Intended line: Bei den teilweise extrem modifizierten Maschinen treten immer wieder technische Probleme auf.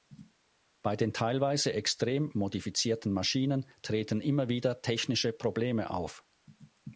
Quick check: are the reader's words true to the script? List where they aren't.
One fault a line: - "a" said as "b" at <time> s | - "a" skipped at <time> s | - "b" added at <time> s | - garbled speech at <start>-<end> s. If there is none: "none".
none